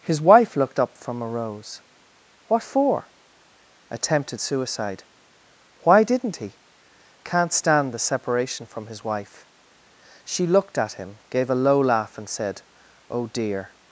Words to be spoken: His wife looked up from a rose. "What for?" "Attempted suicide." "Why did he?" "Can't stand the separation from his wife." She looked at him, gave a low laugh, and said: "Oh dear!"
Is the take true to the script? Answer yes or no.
no